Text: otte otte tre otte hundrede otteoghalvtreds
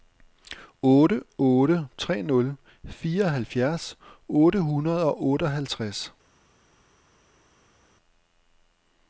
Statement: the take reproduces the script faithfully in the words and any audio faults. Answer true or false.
false